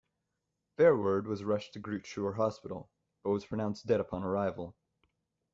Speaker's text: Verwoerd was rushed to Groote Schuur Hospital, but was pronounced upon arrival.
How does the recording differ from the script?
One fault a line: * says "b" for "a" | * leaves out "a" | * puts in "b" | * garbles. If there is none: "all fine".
* puts in "dead"